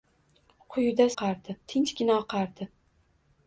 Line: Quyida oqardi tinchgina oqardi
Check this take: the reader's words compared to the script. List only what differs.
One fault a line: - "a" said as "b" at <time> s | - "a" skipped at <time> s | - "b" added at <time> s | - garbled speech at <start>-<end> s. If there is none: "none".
none